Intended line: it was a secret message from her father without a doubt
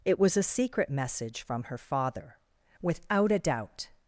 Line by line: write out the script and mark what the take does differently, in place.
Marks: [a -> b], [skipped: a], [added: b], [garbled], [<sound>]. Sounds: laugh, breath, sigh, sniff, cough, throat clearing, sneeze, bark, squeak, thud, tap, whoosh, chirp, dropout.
it was a secret message from her father without a doubt